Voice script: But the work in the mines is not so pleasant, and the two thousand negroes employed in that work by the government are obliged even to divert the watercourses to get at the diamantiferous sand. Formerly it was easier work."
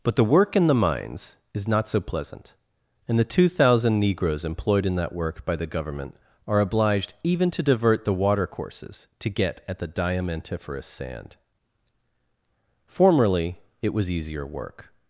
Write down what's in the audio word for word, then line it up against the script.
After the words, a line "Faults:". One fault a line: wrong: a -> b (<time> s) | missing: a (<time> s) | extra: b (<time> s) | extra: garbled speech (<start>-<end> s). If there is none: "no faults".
But the work in the mines is not so pleasant, and the two thousand negroes employed in that work by the government are obliged even to divert the watercourses to get at the diamantiferous sand. Formerly it was easier work."
Faults:
no faults